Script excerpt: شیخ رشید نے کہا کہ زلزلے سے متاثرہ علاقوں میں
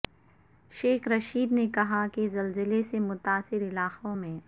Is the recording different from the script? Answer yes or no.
no